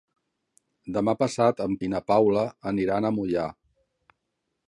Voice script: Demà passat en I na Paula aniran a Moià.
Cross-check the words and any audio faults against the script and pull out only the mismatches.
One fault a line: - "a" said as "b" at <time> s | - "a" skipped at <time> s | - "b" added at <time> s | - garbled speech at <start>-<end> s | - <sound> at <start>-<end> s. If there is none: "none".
none